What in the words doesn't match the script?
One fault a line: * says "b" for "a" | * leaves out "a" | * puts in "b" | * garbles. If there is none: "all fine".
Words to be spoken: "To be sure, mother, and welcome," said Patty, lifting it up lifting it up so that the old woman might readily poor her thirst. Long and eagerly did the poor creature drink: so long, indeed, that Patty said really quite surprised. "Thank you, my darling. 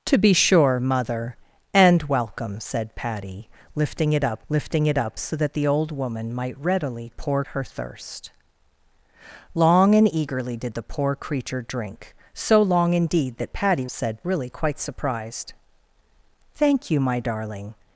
all fine